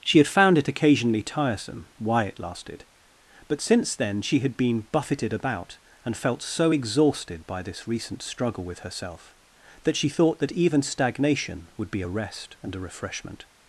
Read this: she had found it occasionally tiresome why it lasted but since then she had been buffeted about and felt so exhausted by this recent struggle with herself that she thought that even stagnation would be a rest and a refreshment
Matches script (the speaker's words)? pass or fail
pass